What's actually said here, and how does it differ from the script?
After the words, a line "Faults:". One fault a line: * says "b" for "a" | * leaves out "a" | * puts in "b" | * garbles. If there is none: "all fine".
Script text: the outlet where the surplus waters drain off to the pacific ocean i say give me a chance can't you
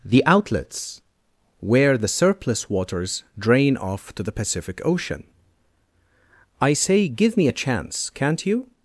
the outlets where the surplus waters drain off to the pacific ocean i say give me a chance can't you
Faults:
* says "outlets" for "outlet"